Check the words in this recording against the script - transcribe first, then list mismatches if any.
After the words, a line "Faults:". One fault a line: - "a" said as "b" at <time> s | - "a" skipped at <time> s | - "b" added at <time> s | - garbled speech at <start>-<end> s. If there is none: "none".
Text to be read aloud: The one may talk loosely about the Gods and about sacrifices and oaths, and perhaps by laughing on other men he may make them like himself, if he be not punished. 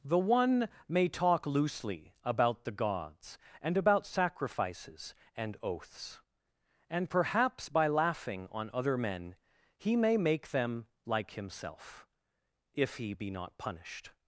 The one may talk loosely about the Gods and about sacrifices and oaths, and perhaps by laughing on other men he may make them like himself, if he be not punished.
Faults:
none